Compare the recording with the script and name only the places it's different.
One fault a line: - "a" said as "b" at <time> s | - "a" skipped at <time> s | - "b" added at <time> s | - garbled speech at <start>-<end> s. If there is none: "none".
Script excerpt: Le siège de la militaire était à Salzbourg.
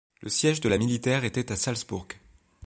none